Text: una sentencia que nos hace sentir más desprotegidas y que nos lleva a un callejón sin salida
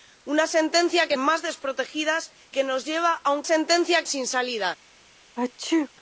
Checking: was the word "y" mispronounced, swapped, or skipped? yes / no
yes